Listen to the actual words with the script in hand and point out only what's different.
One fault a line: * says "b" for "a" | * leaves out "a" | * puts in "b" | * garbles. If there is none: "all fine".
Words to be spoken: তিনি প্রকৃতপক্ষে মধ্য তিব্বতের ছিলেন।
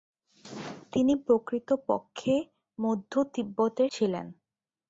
all fine